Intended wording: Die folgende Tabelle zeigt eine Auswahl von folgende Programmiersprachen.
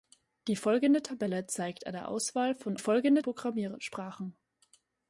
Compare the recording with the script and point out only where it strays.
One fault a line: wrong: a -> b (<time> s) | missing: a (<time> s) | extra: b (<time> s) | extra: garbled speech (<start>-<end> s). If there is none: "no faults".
no faults